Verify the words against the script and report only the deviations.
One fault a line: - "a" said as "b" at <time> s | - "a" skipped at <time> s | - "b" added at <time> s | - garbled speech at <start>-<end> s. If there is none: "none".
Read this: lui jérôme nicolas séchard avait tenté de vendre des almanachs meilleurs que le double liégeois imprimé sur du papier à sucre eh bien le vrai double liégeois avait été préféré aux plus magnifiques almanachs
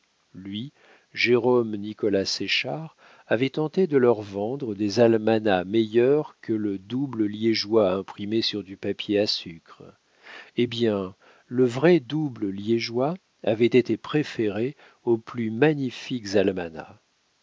- "leur" added at 4.0 s